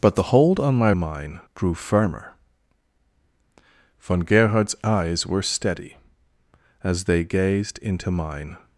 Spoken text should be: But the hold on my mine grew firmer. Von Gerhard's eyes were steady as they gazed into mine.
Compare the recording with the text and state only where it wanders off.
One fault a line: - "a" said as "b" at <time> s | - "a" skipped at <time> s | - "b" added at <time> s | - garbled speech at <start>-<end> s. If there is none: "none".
none